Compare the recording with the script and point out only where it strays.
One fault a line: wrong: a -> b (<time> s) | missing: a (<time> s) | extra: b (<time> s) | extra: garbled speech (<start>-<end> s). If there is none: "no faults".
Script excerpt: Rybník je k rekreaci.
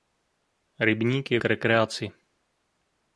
no faults